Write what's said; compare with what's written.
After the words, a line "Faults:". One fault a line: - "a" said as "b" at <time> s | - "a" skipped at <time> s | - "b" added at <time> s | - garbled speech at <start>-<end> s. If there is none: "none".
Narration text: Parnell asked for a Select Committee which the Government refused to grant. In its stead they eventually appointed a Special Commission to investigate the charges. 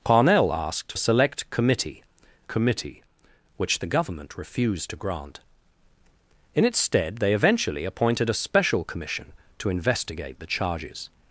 Parnell asked a Select Committee Committee which the Government refused to grant. In its stead they eventually appointed a Special Commission to investigate the charges.
Faults:
- "for" skipped at 0.9 s
- "Committee" added at 2.5 s